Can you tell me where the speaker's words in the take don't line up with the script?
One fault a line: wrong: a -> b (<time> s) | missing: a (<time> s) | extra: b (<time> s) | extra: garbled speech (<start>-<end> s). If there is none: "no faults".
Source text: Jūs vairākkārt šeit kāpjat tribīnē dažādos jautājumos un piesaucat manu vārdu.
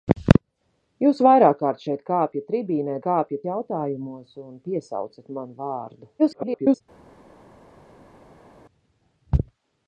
wrong: dažādos -> kāpjat (3.1 s)
extra: garbled speech (6.2-6.8 s)